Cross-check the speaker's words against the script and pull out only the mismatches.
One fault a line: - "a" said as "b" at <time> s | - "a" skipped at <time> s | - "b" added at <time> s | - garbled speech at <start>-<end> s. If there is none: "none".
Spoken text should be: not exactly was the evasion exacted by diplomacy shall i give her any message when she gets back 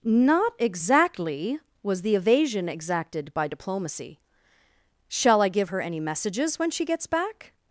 - "message" said as "messages" at 6.0 s